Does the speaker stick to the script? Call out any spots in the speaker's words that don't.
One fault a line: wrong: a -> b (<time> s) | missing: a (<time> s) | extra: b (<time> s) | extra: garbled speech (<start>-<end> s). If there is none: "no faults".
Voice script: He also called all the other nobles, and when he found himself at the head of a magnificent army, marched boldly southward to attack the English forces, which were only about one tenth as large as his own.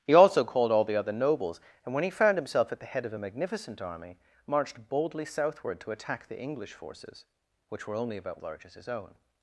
missing: one tenth as (8.4 s)